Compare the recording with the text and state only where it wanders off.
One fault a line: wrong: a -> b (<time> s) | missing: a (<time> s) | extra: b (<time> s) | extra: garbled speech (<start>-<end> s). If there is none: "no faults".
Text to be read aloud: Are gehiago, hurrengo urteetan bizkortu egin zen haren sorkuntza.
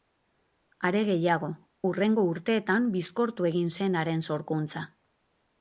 no faults